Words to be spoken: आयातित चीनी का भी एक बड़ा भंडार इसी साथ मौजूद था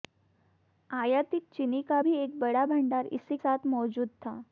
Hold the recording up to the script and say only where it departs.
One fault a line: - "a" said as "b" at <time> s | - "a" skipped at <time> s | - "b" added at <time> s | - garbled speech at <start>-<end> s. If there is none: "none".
none